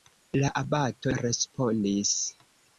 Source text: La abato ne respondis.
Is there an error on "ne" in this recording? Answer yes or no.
yes